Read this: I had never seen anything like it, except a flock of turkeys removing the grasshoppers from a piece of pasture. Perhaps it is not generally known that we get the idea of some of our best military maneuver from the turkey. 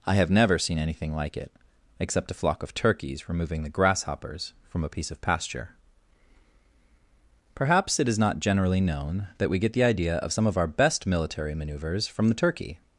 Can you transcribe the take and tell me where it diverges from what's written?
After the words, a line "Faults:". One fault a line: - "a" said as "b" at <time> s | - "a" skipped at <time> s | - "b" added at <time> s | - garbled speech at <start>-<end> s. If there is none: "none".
I have never seen anything like it, except a flock of turkeys removing the grasshoppers from a piece of pasture. Perhaps it is not generally known that we get the idea of some of our best military maneuvers from the turkey.
Faults:
- "had" said as "have" at 0.1 s
- "maneuver" said as "maneuvers" at 11.5 s